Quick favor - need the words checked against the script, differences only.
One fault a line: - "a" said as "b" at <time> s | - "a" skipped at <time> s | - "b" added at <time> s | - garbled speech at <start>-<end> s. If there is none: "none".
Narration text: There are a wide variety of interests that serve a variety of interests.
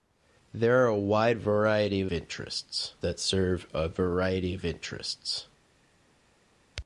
none